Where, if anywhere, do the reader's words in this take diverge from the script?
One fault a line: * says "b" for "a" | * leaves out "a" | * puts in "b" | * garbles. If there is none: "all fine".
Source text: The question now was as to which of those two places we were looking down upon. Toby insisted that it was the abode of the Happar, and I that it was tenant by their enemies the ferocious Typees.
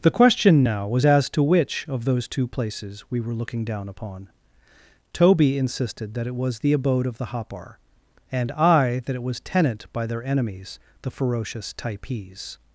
all fine